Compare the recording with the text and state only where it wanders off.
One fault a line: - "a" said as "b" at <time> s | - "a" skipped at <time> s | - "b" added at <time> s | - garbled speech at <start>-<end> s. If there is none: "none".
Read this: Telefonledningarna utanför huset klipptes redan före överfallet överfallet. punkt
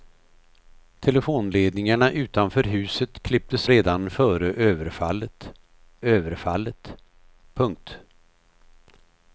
none